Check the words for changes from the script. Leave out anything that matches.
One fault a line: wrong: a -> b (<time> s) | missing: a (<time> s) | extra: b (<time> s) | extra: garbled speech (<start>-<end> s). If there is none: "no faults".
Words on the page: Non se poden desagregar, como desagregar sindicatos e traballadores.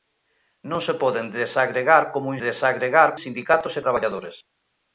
no faults